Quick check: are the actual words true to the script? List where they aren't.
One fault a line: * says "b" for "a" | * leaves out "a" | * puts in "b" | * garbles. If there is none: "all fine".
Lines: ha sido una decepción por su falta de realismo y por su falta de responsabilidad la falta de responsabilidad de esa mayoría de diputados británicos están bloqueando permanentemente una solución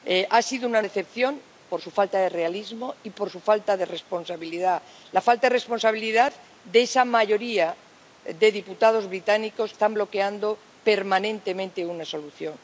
all fine